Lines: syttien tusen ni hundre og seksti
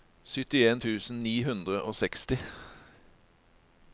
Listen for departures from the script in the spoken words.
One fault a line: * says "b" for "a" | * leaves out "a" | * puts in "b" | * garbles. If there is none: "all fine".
all fine